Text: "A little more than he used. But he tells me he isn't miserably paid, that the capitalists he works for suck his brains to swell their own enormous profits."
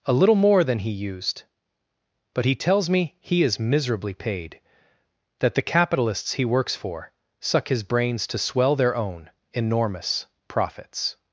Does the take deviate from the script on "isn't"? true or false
true